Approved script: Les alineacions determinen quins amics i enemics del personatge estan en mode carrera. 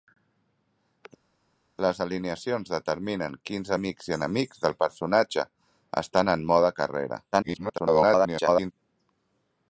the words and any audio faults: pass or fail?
fail